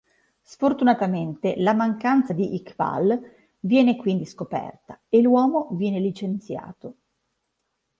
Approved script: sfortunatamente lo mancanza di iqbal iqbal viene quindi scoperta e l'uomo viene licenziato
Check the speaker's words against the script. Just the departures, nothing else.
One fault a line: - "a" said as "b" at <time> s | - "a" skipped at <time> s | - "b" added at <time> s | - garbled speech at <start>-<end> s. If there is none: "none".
- "lo" said as "la" at 1.6 s
- "iqbal" skipped at 3.2 s